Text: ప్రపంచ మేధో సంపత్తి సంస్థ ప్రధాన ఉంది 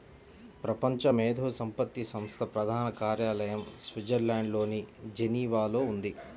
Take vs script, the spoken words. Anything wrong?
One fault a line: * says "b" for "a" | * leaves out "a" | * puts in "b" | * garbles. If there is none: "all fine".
* puts in "కార్యాలయం స్విట్జర్లాండ్లోని జెనీవాలో"